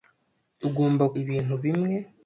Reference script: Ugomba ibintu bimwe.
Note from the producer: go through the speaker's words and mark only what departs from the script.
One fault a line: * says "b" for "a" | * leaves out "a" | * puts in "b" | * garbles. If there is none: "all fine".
all fine